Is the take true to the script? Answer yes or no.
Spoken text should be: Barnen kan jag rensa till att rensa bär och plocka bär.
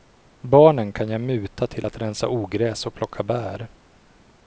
no